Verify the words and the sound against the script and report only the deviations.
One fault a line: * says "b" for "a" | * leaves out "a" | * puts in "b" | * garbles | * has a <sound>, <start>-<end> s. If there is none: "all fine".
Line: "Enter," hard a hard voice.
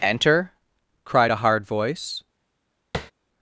* says "cried" for "hard"
* has a tap, 2.9-3.1 s